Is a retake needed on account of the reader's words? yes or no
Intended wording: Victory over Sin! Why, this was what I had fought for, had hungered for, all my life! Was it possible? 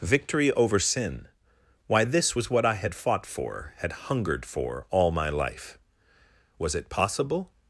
no